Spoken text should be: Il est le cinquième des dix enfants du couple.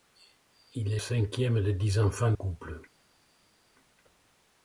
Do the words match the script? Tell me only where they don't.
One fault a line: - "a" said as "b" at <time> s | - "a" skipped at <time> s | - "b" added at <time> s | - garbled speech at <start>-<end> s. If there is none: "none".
- "le" skipped at 1.0 s
- "du" skipped at 2.3 s